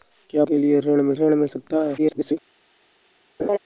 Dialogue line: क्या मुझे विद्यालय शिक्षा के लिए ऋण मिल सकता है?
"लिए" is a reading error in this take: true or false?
true